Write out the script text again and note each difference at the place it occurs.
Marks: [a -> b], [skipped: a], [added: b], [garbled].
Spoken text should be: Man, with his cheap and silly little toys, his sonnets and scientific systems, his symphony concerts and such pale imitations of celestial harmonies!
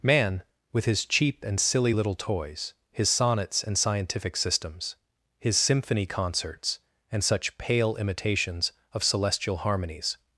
Man, with his cheap and silly little toys, his sonnets and scientific systems, his symphony concerts and such pale imitations of celestial harmonies!